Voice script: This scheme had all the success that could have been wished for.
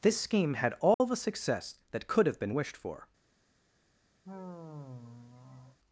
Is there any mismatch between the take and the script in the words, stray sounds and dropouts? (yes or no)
yes